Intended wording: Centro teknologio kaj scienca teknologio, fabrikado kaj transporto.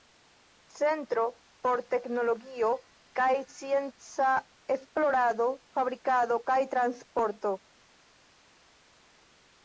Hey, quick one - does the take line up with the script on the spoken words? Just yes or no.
no